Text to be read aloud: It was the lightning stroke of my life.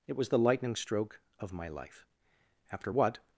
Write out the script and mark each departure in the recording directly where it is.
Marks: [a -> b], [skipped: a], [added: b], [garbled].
It was the lightning stroke of my life. [added: After what]